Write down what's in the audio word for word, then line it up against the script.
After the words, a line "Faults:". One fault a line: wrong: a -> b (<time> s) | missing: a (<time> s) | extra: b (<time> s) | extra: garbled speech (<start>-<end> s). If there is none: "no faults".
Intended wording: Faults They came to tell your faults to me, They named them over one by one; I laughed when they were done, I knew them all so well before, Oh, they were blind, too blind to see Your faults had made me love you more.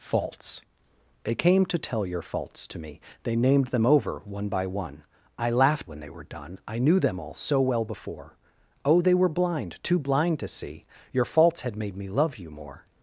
Faults They came to tell your faults to me, They named them over one by one; I laughed when they were done, I knew them all so well before, Oh, they were blind, too blind to see Your faults had made me love you more.
Faults:
no faults